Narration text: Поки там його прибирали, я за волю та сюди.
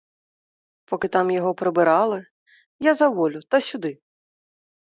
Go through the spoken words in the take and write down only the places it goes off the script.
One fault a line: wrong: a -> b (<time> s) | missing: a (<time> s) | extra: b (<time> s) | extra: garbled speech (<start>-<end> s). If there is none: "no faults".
no faults